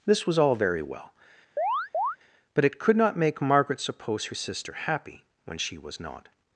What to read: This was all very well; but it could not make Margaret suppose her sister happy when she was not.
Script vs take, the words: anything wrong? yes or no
no